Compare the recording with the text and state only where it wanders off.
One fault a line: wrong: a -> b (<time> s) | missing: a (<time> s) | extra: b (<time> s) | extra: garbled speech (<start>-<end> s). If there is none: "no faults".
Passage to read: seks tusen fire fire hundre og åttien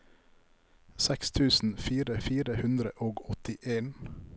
no faults